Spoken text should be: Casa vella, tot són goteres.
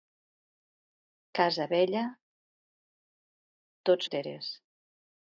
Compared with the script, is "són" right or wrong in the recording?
wrong